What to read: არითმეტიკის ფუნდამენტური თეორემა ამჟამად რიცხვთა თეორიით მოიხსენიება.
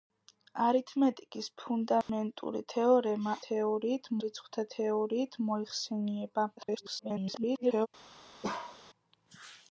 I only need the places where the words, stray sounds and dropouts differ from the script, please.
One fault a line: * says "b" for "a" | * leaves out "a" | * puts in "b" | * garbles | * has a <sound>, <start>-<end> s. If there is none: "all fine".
* has a dropout, 2.0-2.1 s
* says "თეორიით" for "ამჟამად"
* garbles
* has a bark, 8.4-8.8 s